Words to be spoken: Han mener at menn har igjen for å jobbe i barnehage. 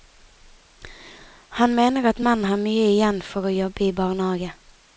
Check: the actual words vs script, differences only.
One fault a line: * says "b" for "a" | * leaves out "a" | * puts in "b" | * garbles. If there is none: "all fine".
* puts in "mye"